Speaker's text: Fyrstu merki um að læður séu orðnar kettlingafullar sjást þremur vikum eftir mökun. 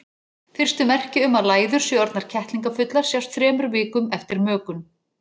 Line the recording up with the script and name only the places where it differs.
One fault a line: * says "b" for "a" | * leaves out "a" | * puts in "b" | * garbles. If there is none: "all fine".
all fine